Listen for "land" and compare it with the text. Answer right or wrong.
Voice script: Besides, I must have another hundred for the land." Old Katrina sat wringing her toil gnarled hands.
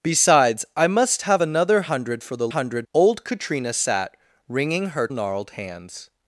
wrong